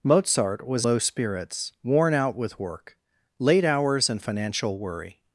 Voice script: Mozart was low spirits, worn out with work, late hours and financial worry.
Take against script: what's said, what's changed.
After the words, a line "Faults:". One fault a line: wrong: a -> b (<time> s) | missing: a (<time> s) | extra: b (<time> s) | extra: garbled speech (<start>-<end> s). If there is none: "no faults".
Mozart was low spirits, worn out with work, late hours and financial worry.
Faults:
no faults